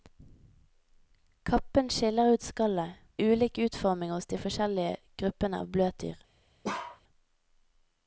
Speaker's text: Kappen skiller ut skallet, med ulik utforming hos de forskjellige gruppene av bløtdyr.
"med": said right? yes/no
no